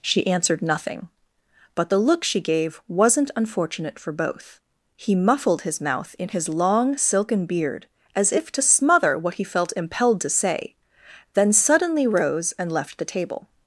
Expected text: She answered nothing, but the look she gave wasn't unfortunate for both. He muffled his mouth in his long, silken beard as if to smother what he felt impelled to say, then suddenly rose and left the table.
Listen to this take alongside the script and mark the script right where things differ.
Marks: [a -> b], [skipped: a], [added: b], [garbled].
She answered nothing, but the look she gave wasn't unfortunate for both. He muffled his mouth in his long, silken beard as if to smother what he felt impelled to say, then suddenly rose and left the table.